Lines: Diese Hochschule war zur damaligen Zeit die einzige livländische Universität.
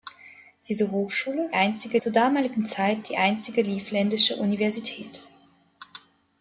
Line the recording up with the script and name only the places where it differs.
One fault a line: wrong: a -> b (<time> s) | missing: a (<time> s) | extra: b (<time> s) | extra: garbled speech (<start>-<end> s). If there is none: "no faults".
wrong: war -> einzige (1.5 s)